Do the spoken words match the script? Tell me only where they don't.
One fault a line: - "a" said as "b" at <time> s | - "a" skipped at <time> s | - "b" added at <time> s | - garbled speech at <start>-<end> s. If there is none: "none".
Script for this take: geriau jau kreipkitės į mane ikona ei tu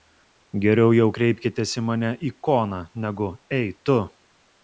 - "negu" added at 3.1 s